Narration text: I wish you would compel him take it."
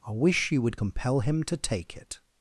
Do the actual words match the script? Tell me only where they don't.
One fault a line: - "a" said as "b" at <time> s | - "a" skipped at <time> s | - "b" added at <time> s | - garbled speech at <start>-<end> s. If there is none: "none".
- "to" added at 1.4 s